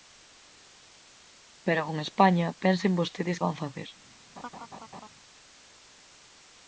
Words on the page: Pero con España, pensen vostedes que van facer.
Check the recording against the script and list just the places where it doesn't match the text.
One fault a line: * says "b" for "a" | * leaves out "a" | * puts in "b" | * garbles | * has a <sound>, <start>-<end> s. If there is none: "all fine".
* leaves out "que"
* has a laugh, 4.4-5.1 s